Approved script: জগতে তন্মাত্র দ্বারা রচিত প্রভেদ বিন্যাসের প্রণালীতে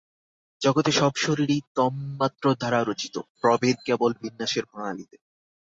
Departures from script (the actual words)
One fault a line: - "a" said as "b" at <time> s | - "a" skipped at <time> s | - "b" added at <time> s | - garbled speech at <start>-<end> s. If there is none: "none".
- "সব শরীরই" added at 0.9 s
- "কেবল" added at 3.9 s